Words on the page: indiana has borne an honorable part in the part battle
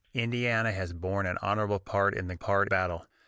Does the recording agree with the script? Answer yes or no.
yes